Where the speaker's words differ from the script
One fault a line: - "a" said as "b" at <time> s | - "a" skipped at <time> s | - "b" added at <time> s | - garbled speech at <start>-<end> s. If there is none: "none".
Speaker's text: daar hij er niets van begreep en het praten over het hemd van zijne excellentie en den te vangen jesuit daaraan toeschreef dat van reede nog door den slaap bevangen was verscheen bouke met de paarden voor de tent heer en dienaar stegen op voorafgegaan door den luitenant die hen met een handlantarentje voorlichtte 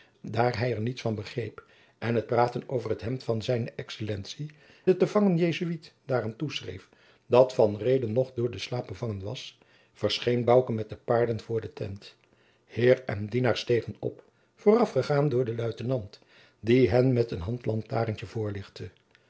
- "en" skipped at 4.5 s